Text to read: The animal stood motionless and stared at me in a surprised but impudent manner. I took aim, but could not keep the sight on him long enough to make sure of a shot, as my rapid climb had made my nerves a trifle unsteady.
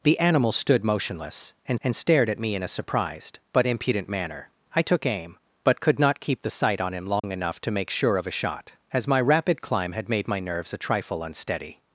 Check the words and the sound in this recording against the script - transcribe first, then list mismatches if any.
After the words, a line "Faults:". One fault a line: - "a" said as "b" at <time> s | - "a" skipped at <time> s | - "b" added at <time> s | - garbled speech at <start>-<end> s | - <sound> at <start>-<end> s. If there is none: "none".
The animal stood motionless and and stared at me in a surprised but impudent manner. I took aim, but could not keep the sight on him long enough to make sure of a shot, as my rapid climb had made my nerves a trifle unsteady.
Faults:
- "and" added at 1.8 s
- dropout at 7.2-7.2 s